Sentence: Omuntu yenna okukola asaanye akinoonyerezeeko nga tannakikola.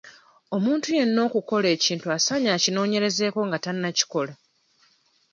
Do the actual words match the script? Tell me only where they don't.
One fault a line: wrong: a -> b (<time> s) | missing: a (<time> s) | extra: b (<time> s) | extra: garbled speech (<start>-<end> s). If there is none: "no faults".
extra: ekintu (1.8 s)